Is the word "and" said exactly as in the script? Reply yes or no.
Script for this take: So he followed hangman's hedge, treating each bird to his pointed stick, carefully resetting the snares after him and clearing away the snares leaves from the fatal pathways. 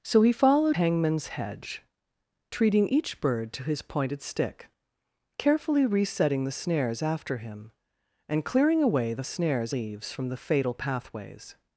yes